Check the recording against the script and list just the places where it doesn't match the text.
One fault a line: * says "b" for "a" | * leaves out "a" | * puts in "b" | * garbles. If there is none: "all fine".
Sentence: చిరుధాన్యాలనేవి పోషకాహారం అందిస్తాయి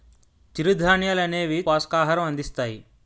all fine